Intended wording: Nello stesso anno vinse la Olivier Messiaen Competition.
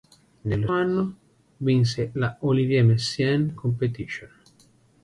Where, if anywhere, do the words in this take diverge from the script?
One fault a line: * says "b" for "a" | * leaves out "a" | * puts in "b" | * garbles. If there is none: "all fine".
* leaves out "stesso"